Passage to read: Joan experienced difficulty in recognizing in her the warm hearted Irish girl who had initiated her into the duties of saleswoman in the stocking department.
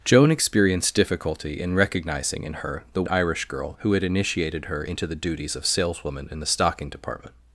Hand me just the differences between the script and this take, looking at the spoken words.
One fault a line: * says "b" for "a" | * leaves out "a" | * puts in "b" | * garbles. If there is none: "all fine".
* leaves out "warm hearted"